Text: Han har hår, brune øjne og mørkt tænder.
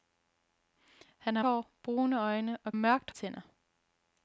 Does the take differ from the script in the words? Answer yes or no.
no